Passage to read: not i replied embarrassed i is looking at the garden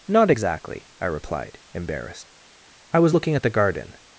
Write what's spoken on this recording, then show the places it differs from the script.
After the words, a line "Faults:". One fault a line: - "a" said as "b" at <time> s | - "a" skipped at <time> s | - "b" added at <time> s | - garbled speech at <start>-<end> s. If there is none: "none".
not exactly i replied embarrassed i was looking at the garden
Faults:
- "exactly" added at 0.3 s
- "is" said as "was" at 3.0 s